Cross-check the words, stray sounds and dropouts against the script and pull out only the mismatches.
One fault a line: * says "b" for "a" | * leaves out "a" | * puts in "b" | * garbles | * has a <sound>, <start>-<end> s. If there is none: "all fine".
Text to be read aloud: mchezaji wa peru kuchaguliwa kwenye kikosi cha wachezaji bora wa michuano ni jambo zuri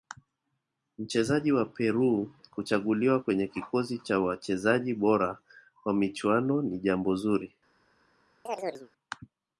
* has a chirp, 8.5-8.9 s